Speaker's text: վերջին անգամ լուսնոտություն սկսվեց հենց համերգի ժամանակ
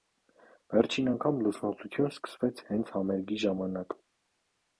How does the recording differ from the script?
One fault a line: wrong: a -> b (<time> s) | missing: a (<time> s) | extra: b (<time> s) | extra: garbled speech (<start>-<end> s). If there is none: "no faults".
no faults